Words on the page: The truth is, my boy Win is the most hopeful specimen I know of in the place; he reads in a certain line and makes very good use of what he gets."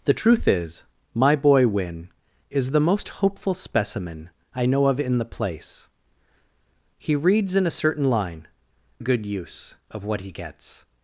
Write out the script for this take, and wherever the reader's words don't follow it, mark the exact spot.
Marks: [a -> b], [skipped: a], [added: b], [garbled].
The truth is, my boy Win is the most hopeful specimen I know of in the place; he reads in a certain line [skipped: and makes very] good use of what he gets."